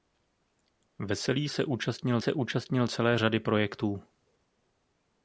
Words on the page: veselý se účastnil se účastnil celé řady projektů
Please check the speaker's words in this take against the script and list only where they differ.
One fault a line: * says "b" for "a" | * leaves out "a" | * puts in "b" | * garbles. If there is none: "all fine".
all fine